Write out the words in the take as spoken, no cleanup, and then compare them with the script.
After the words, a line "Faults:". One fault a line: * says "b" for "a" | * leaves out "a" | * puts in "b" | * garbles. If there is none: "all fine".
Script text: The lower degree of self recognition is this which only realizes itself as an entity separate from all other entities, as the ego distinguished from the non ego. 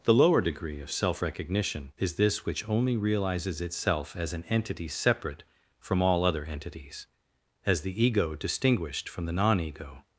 The lower degree of self recognition is this which only realizes itself as an entity separate from all other entities, as the ego distinguished from the non ego.
Faults:
all fine